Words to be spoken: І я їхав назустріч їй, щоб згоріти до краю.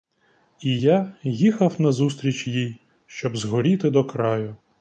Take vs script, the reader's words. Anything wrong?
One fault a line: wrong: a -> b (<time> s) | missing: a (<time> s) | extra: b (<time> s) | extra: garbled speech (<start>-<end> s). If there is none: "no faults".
no faults